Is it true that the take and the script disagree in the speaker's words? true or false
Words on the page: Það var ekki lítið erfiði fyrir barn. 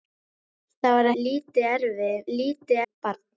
true